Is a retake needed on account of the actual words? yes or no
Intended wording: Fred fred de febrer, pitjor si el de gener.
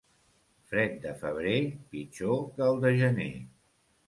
yes